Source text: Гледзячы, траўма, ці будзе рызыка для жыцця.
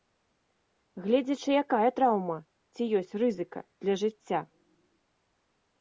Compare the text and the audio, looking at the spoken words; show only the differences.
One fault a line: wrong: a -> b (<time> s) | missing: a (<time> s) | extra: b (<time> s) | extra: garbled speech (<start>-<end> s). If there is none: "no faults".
extra: якая (1.6 s)
wrong: будзе -> ёсць (3.0 s)